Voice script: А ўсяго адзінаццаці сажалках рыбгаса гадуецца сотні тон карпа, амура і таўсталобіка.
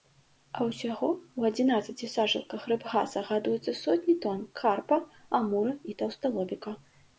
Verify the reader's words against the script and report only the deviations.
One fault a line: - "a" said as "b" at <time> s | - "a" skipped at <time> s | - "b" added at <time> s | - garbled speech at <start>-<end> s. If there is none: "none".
- "ў" added at 1.1 s